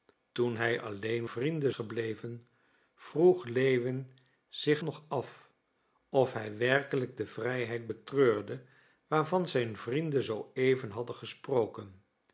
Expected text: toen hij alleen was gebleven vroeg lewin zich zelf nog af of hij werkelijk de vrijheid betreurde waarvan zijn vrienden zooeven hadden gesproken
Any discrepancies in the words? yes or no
yes